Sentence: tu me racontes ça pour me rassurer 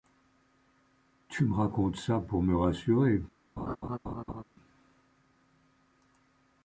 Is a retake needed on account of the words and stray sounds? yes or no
yes